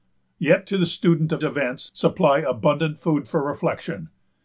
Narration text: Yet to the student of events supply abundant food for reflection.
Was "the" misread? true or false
false